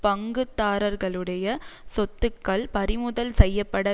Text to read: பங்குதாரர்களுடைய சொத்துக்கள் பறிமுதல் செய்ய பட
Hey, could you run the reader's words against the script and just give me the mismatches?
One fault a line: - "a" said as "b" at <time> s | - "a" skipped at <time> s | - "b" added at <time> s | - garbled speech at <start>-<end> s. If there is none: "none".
none